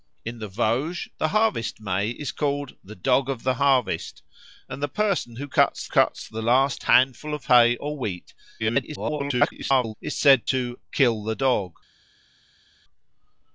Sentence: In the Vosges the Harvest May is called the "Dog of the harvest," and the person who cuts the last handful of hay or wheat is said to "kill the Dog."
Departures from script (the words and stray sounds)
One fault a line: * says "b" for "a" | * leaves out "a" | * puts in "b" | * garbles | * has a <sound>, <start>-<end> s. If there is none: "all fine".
* puts in "cuts"
* garbles